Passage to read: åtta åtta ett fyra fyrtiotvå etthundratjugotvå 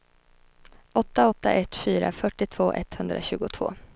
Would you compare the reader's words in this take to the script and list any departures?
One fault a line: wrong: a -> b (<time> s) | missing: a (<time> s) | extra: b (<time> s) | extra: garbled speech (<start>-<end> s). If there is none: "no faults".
no faults